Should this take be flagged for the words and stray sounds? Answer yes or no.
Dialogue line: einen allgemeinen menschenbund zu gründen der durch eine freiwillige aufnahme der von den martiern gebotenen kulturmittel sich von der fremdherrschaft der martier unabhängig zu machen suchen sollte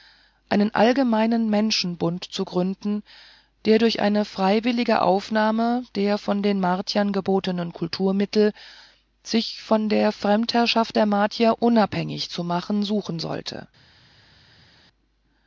no